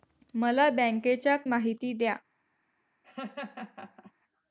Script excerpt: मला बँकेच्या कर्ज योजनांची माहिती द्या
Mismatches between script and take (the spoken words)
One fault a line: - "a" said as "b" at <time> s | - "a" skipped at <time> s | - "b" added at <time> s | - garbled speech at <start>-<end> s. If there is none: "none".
- "कर्ज योजनांची" skipped at 1.4 s